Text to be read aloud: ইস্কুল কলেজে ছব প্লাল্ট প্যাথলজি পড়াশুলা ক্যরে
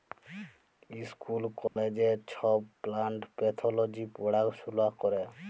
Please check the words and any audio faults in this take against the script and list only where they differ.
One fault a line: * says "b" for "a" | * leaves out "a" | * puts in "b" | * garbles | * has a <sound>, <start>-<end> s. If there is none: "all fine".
* has a dropout, 1.7-1.8 s